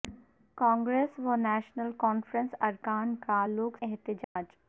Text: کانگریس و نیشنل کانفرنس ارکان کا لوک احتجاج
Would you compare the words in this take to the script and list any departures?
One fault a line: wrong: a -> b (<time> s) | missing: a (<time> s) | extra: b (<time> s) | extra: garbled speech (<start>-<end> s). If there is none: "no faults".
no faults